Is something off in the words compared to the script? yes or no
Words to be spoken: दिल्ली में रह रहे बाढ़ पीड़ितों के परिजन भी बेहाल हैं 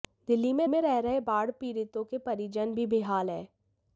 yes